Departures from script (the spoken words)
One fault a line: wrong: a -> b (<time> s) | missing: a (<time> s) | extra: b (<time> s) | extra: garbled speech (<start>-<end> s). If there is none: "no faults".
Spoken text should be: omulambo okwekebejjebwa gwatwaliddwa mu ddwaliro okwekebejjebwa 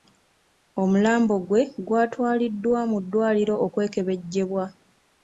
wrong: okwekebejjebwa -> gwe (1.5 s)